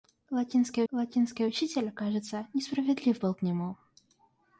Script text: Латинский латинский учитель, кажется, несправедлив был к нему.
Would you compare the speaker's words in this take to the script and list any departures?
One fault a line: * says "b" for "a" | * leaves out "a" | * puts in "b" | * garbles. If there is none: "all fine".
all fine